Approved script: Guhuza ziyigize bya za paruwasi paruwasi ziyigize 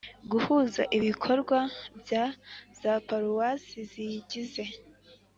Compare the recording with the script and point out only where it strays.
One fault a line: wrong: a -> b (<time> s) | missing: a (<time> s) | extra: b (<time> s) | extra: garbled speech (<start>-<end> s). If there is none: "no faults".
wrong: ziyigize -> ibikorwa (1.0 s)
missing: paruwasi (3.8 s)